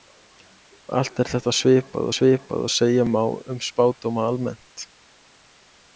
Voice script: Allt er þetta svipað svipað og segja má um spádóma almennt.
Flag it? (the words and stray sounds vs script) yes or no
no